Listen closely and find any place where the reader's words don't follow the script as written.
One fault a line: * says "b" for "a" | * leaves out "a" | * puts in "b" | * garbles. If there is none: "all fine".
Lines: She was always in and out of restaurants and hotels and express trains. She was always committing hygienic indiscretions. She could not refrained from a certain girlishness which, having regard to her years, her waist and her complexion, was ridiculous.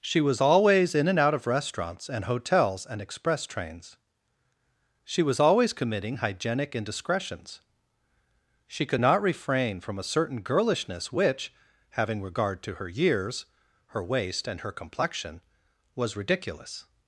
* says "refrain" for "refrained"